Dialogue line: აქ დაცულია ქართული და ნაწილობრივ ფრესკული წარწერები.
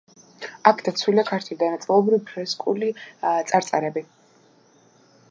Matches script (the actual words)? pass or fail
pass